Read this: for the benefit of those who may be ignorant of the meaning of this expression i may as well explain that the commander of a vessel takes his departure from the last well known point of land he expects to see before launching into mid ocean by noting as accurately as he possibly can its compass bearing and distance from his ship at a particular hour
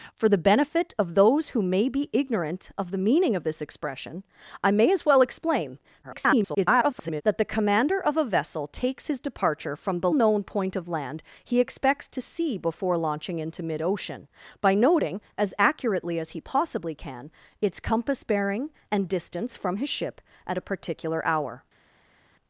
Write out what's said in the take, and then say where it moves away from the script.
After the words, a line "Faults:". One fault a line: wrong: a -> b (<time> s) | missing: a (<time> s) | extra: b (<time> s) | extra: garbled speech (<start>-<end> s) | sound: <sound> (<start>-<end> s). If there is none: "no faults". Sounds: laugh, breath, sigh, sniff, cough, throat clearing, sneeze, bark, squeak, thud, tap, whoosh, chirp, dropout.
for the benefit of those who may be ignorant of the meaning of this expression i may as well explain [garbled] that the commander of a vessel takes his departure from the known point of land he expects to see before launching into mid ocean by noting as accurately as he possibly can its compass bearing and distance from his ship at a particular hour
Faults:
extra: garbled speech (6.0-7.2 s)
missing: last well (10.1 s)